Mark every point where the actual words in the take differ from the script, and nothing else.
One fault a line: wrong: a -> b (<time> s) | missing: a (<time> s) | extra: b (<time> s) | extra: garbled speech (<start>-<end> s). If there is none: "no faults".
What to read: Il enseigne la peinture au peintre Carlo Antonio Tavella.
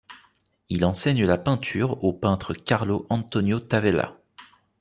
no faults